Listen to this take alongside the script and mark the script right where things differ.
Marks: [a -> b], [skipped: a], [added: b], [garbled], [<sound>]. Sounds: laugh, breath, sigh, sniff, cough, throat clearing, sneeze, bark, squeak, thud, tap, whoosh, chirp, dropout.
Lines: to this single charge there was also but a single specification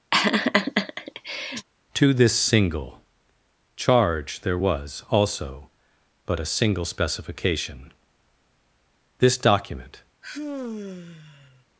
[laugh] to this single charge there was also but a single specification [added: this document] [sigh]